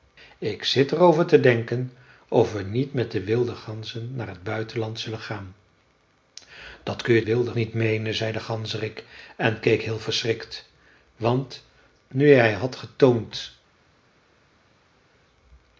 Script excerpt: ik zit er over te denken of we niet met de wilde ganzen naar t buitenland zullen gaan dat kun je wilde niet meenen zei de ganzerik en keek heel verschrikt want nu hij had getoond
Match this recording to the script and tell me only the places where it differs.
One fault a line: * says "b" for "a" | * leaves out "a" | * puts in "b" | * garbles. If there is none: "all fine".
all fine